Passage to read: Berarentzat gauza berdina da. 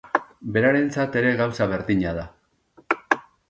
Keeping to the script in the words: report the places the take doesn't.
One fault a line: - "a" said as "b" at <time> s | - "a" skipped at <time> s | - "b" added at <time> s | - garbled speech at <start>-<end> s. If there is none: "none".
- "ere" added at 1.2 s